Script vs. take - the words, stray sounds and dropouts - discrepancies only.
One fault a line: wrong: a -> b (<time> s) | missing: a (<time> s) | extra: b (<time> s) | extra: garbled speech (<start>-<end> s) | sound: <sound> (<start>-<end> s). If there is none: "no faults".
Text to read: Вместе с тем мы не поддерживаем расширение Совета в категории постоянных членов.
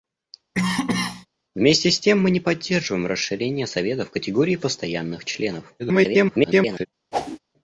sound: cough (0.5-1.3 s)
extra: garbled speech (5.8-6.9 s)
sound: whoosh (7.1-7.4 s)